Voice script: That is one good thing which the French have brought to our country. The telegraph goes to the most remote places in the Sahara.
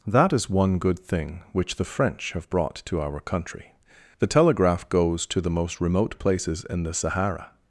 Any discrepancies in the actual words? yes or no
no